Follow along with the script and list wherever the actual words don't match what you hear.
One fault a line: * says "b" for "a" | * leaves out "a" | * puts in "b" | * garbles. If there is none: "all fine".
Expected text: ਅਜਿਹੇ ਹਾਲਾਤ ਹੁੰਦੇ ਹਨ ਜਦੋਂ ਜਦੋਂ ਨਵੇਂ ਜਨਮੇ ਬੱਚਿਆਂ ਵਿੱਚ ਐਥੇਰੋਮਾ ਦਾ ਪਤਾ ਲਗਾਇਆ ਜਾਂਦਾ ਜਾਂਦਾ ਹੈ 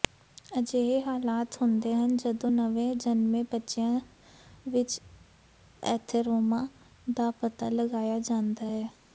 * leaves out "ਜਦੋਂ"
* leaves out "ਜਾਂਦਾ"